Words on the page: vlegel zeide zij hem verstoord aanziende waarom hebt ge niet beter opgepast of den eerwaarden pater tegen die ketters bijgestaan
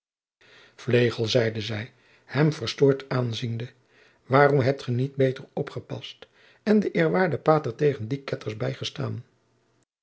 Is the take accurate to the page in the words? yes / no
no